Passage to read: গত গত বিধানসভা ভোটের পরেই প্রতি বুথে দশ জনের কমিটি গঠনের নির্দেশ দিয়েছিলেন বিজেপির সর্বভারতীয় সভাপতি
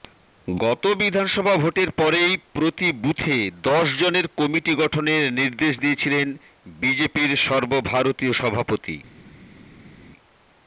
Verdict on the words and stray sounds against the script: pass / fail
fail